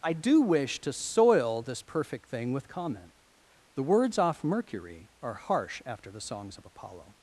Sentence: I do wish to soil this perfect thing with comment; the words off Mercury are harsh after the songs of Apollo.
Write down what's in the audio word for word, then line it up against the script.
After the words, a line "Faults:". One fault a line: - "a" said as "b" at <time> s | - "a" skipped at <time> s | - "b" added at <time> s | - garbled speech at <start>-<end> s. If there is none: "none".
I do wish to soil this perfect thing with comment; the words off Mercury are harsh after the songs of Apollo.
Faults:
none